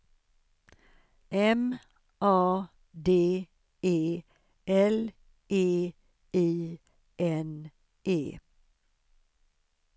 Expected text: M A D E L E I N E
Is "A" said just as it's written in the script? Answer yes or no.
yes